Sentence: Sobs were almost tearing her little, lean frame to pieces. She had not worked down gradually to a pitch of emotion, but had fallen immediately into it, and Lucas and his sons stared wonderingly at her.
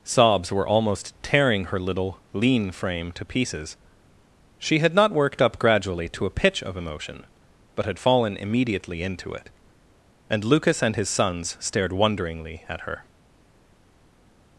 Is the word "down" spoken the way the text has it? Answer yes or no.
no